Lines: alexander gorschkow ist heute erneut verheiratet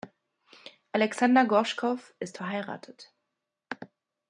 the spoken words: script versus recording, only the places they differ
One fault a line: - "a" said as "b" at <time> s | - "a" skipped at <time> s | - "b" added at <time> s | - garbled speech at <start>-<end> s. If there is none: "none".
- "heute erneut" skipped at 2.4 s